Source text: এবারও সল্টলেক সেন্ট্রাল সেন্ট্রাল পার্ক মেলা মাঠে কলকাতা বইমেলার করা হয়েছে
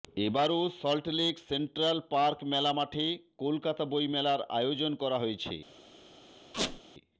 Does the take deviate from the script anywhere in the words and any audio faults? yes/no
yes